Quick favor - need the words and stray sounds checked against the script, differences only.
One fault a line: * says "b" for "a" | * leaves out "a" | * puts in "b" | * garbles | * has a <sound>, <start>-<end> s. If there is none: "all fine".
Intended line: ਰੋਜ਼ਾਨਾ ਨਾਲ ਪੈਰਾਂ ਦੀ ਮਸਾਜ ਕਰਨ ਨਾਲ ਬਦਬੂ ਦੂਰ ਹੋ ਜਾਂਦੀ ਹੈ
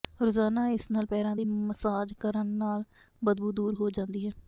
* puts in "ਇਸ"